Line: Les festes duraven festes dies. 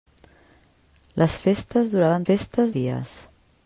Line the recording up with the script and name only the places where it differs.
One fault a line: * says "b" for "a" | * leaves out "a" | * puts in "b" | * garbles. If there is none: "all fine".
all fine